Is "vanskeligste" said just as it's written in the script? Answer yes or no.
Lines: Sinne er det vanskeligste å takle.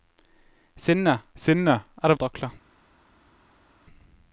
no